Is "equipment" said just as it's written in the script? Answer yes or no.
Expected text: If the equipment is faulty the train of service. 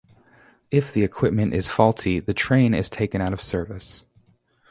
yes